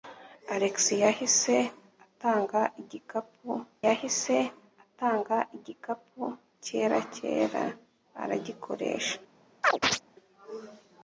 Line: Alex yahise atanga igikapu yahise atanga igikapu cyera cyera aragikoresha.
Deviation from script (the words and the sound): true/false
true